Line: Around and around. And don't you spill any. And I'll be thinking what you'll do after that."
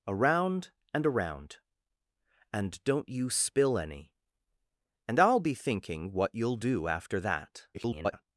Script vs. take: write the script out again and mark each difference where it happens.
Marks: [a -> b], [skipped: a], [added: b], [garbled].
Around and around. And don't you spill any. And I'll be thinking what you'll do after that." [garbled]